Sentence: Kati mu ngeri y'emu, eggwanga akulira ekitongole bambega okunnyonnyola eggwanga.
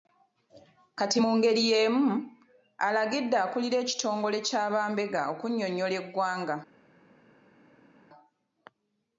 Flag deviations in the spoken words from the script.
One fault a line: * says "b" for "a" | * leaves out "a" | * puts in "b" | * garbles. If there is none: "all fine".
* says "alagidde" for "eggwanga"
* puts in "kya"